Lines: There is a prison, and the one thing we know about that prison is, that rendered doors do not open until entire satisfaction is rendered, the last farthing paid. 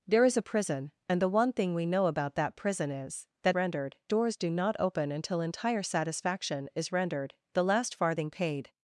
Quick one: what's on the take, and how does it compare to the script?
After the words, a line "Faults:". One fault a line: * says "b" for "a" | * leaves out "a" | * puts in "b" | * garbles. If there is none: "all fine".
There is a prison, and the one thing we know about that prison is, that rendered doors do not open until entire satisfaction is rendered, the last farthing paid.
Faults:
all fine